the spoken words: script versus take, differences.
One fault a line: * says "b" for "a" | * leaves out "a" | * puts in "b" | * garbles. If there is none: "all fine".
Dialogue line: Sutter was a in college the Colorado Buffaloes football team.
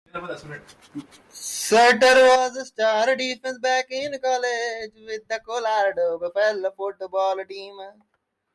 * puts in "star defensive back"
* puts in "with"